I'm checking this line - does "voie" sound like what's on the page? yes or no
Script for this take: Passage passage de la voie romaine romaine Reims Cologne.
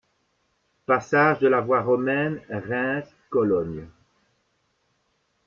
yes